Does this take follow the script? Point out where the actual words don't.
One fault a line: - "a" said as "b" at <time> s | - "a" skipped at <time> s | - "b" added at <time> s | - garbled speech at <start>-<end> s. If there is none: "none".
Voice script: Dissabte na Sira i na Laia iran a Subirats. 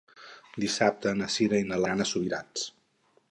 - "Laia" skipped at 1.8 s